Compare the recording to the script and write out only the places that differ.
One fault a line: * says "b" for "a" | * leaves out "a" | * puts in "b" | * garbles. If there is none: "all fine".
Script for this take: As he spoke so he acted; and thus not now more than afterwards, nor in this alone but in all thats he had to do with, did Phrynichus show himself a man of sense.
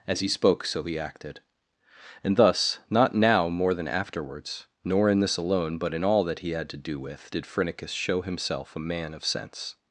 * says "that" for "thats"